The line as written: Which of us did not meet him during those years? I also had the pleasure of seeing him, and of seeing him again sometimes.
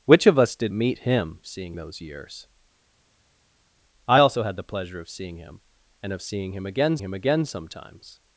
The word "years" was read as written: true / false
true